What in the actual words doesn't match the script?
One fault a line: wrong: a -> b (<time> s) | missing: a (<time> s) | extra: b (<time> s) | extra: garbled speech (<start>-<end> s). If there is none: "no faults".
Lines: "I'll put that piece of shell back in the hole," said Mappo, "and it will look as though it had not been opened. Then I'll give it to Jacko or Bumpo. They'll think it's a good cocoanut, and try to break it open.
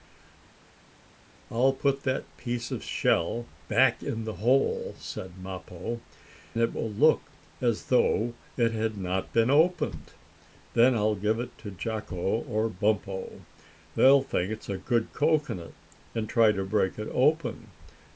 missing: and (6.0 s)